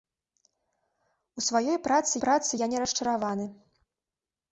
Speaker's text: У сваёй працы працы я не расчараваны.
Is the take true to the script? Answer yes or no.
yes